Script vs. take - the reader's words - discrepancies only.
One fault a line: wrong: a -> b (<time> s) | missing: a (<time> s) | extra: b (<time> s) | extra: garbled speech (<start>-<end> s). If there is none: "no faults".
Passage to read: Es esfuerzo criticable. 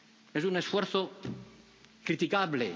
extra: un (0.4 s)